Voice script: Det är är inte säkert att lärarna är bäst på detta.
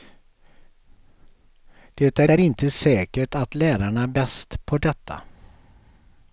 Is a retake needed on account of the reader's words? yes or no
no